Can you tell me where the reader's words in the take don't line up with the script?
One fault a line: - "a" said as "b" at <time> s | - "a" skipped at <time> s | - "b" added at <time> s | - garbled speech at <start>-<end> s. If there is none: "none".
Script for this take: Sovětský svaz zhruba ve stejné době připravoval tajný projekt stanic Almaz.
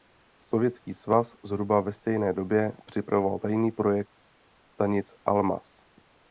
none